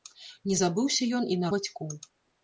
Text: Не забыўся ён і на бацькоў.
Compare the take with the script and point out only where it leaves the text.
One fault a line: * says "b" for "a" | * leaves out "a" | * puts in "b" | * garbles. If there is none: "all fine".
all fine